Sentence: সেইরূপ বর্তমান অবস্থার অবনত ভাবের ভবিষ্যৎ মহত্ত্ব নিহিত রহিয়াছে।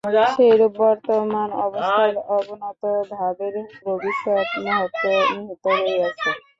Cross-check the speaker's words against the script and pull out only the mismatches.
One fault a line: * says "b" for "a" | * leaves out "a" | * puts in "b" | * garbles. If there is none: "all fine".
all fine